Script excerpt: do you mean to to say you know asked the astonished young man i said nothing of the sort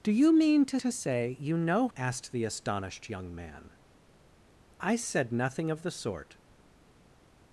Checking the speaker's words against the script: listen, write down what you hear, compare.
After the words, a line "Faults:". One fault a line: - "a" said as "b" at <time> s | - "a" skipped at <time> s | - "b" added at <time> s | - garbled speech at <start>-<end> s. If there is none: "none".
do you mean to to say you know asked the astonished young man i said nothing of the sort
Faults:
none